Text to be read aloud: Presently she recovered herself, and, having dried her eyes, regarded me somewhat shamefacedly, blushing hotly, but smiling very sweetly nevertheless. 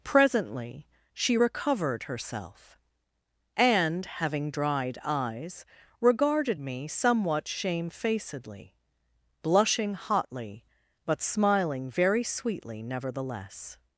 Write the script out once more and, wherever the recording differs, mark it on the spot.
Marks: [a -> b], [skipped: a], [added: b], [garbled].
Presently she recovered herself, and, having dried [skipped: her] eyes, regarded me somewhat shamefacedly, blushing hotly, but smiling very sweetly nevertheless.